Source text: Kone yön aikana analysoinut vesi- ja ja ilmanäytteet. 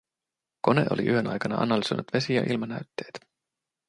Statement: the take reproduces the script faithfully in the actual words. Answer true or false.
false